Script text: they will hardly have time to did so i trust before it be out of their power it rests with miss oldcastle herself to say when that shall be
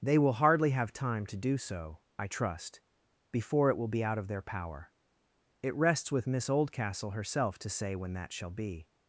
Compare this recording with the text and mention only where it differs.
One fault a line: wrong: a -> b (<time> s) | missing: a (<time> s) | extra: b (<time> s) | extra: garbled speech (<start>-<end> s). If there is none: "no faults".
wrong: did -> do (1.4 s)
extra: will (3.8 s)